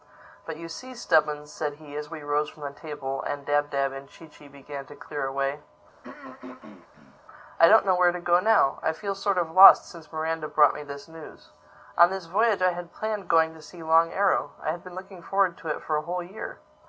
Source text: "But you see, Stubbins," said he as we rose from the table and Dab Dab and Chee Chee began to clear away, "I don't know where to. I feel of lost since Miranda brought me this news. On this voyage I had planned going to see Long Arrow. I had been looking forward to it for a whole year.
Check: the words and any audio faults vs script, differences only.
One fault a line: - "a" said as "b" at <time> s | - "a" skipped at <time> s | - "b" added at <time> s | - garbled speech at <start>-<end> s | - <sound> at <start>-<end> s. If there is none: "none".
- throat clearing at 6.0-7.2 s
- "go now" added at 8.2 s
- "sort" added at 9.1 s